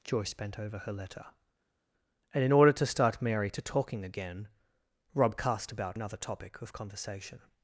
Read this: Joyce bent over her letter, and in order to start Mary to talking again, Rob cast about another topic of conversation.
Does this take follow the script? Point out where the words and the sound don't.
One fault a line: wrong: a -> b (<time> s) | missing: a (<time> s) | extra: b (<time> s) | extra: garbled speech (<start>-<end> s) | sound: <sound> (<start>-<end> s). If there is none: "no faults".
no faults